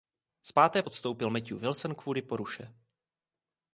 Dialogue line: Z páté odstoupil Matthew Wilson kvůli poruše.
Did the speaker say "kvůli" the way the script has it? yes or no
yes